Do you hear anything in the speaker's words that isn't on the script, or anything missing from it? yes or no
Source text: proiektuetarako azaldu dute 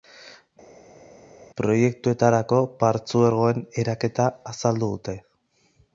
yes